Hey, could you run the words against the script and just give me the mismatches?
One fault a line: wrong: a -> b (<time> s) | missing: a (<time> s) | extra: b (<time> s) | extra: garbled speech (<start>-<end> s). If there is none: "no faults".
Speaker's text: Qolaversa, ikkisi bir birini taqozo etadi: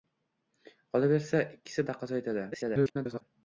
missing: bir birini (1.9 s)
extra: garbled speech (2.5-3.2 s)